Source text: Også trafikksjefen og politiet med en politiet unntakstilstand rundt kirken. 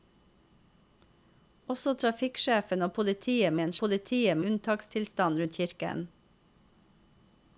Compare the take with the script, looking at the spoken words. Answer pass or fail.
pass